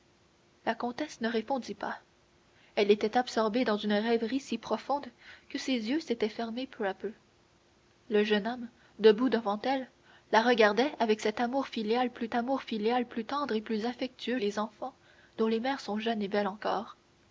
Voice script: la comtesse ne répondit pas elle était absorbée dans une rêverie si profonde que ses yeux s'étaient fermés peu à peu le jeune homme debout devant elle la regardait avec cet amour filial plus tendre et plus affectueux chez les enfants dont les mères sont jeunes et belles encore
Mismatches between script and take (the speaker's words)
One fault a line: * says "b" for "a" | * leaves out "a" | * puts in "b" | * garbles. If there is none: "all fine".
* puts in "amour filial plus"
* leaves out "chez"